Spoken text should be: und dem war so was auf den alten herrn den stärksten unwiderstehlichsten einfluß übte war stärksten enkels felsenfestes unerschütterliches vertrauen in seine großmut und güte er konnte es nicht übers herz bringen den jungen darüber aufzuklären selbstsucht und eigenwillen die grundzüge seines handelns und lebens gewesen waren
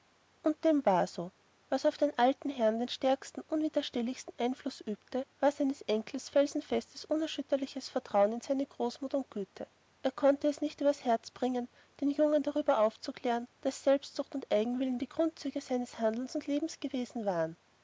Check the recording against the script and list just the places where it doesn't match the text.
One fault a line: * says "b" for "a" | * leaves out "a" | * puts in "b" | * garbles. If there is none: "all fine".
* says "seines" for "stärksten"
* puts in "daß"